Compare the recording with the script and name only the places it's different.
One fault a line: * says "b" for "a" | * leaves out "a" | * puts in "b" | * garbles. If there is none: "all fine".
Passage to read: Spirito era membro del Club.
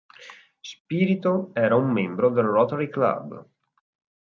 * puts in "un"
* puts in "Rotary"